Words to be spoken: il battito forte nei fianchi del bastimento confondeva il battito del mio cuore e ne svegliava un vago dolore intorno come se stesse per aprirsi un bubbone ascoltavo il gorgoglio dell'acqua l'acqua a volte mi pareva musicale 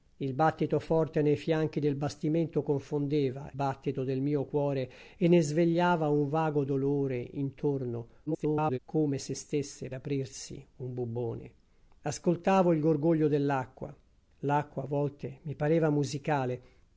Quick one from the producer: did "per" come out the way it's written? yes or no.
no